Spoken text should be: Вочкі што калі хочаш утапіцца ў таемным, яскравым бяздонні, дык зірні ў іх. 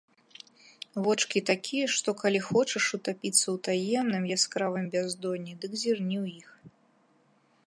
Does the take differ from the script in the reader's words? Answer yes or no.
yes